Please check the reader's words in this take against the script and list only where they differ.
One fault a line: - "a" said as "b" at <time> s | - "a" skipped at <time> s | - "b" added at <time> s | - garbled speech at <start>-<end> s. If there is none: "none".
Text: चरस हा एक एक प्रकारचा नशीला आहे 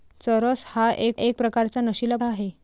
none